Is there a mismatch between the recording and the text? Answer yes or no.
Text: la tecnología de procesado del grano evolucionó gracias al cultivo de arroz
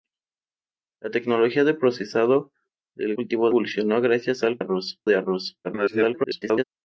yes